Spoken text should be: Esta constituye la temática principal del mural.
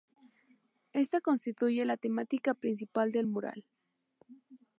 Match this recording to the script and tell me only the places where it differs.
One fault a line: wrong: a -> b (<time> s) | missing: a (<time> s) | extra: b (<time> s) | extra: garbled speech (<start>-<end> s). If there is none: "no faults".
no faults